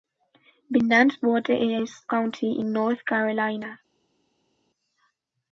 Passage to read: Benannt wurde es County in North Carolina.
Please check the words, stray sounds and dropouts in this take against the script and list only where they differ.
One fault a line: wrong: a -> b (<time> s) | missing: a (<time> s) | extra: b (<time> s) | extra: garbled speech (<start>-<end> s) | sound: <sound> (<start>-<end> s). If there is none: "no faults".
no faults